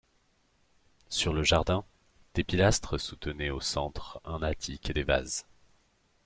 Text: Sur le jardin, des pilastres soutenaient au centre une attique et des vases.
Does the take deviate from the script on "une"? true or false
true